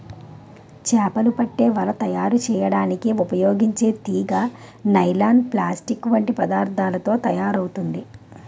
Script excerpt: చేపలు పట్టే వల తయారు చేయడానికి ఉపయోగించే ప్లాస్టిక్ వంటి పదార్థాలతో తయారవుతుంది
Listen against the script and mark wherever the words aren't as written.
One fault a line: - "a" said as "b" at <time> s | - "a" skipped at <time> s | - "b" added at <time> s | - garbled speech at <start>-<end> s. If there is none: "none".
- "తీగ నైలాన్" added at 4.1 s